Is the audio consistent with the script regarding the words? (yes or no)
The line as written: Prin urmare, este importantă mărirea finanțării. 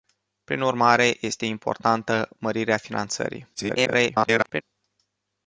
no